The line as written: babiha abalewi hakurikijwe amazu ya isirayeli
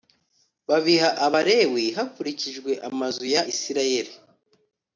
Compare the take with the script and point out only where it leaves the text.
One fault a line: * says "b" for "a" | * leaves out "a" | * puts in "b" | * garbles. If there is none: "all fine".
all fine